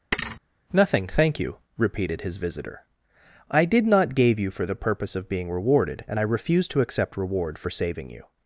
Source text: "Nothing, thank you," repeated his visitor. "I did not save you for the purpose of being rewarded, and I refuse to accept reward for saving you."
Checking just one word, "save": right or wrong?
wrong